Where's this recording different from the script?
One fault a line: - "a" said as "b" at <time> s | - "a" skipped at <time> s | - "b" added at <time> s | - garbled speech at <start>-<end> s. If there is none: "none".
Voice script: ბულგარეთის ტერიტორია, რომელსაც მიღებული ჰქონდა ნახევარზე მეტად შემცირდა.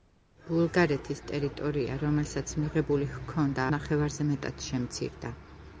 none